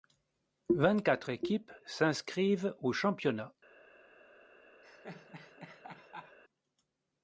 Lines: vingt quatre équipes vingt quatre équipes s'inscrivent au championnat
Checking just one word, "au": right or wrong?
right